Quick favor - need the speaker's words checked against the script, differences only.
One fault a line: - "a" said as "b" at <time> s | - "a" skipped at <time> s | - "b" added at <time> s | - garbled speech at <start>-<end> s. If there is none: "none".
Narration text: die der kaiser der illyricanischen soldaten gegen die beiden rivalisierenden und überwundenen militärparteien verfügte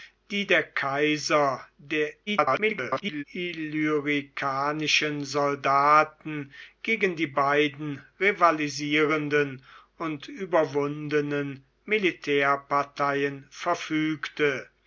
- garbled speech at 2.3-3.2 s